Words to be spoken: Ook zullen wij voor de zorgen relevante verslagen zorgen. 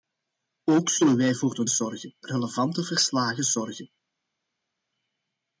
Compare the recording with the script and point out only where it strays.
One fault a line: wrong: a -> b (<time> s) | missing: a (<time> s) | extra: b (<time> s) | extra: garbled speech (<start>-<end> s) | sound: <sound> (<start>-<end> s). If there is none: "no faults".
no faults